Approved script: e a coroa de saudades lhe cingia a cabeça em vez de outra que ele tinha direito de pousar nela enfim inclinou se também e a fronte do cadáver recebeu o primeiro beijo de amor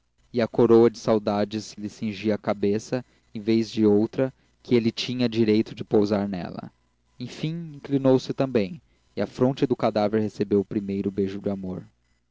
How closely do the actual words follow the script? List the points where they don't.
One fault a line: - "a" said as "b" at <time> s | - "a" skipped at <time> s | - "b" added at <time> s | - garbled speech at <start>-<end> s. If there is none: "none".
none